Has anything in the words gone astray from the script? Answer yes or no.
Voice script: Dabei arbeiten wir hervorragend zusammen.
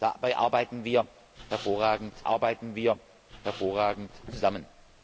yes